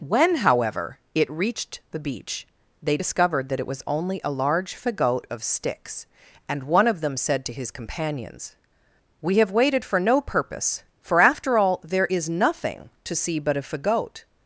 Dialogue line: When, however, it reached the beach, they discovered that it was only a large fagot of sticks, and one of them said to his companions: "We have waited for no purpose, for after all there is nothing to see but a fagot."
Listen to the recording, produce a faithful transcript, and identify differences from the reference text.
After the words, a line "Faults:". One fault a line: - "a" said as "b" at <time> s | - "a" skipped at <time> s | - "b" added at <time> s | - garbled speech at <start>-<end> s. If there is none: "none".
When, however, it reached the beach, they discovered that it was only a large fagot of sticks, and one of them said to his companions: "We have waited for no purpose, for after all there is nothing to see but a fagot."
Faults:
none